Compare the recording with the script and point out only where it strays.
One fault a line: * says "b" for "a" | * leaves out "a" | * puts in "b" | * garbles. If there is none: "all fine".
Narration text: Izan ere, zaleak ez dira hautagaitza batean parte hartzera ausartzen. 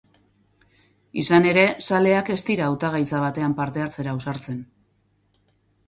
all fine